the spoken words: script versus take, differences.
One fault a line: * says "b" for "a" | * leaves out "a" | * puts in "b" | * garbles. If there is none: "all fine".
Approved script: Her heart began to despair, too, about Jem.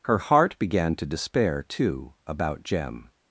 all fine